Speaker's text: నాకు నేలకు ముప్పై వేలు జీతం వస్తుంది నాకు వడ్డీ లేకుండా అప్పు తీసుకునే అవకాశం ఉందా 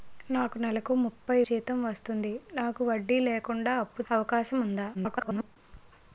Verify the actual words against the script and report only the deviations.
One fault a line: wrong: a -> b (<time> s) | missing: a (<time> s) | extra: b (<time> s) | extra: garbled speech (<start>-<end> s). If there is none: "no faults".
missing: వేలు (1.4 s)
missing: తీసుకునే (4.0 s)
extra: garbled speech (4.9-5.6 s)